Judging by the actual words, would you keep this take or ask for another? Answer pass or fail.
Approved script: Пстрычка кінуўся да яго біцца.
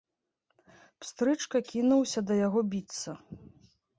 pass